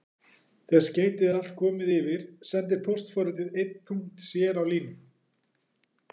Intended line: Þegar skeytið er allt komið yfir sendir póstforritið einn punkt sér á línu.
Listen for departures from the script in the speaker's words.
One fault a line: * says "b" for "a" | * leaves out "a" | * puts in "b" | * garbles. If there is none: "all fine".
all fine